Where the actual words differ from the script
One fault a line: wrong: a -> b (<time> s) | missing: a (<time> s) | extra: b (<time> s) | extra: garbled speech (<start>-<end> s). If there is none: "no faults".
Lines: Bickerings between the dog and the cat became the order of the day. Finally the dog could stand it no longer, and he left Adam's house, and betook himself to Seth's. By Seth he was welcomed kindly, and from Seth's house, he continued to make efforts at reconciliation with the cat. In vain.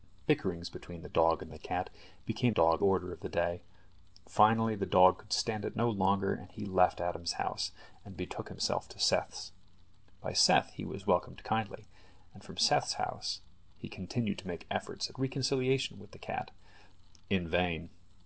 wrong: the -> dog (2.5 s)